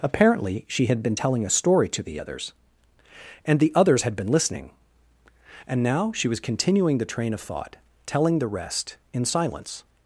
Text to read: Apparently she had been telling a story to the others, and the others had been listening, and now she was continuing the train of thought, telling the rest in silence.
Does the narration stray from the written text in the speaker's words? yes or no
no